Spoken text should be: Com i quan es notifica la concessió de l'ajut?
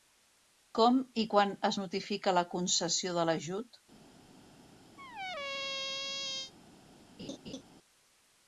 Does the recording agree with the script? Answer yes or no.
yes